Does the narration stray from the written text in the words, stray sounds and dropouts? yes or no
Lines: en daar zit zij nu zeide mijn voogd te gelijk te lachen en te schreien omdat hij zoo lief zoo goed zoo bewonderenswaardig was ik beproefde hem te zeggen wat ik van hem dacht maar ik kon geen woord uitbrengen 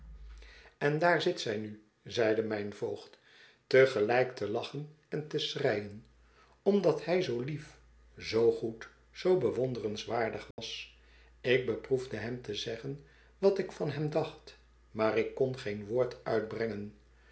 yes